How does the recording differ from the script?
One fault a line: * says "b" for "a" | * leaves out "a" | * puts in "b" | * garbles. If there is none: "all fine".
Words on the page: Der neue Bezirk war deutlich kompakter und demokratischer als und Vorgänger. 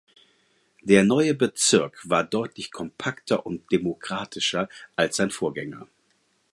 * says "sein" for "und"